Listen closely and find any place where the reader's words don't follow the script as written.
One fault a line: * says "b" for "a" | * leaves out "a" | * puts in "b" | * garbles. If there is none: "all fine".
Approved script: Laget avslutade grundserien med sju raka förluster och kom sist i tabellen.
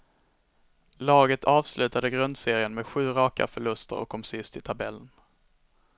all fine